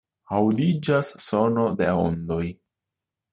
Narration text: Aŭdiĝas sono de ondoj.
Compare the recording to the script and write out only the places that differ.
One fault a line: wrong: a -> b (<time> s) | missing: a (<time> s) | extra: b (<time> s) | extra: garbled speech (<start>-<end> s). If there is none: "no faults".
no faults